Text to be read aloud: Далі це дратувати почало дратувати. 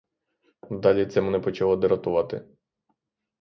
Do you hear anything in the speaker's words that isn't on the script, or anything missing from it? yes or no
yes